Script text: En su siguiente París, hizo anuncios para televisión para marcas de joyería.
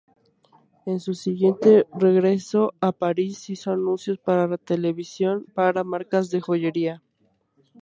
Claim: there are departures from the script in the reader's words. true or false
true